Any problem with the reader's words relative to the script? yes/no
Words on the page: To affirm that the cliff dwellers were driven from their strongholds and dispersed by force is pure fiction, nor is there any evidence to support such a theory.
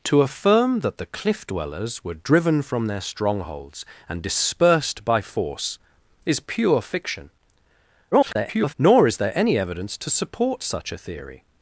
yes